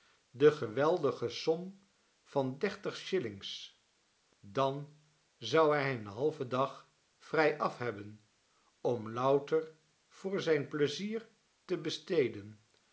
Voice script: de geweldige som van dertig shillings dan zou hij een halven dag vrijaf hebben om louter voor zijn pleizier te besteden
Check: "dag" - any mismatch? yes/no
no